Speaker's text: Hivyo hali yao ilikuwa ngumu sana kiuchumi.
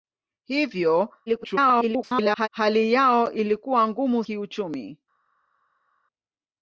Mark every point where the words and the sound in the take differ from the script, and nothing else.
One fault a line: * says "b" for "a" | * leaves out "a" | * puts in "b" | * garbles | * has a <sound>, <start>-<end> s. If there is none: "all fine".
* garbles
* leaves out "sana"